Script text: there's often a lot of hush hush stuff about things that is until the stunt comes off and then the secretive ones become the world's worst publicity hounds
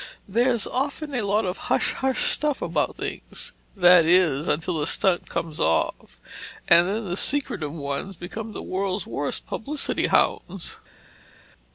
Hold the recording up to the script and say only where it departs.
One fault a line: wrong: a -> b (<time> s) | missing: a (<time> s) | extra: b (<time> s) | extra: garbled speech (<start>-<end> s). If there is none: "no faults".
no faults